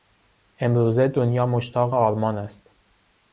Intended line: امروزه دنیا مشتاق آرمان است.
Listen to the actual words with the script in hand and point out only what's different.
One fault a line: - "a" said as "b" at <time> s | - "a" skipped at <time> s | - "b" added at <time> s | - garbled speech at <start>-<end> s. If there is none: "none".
none